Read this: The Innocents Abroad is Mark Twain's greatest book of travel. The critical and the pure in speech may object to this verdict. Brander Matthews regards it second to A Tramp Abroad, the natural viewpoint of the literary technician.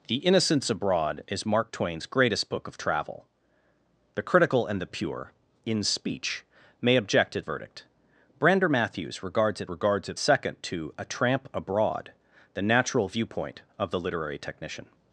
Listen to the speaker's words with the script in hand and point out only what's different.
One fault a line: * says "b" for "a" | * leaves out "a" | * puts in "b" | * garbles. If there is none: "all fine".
* leaves out "this"
* puts in "regards it"